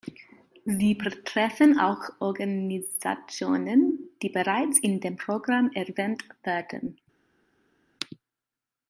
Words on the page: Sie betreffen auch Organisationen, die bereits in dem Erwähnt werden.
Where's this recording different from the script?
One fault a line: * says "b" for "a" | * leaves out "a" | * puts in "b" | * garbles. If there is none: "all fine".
* puts in "Programm"